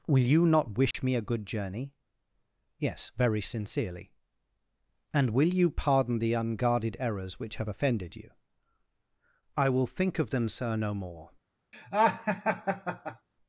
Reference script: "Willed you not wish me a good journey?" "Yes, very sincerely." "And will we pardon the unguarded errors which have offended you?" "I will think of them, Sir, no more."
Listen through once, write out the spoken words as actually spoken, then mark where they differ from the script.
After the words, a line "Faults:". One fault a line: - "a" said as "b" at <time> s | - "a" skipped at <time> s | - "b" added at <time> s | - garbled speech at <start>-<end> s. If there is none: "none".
"Will you not wish me a good journey?" "Yes, very sincerely." "And will you pardon the unguarded errors which have offended you?" "I will think of them, Sir, no more."
Faults:
- "Willed" said as "Will" at 0.1 s
- "we" said as "you" at 5.5 s